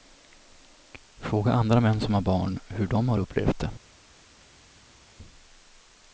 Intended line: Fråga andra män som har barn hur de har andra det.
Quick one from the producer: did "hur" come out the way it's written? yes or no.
yes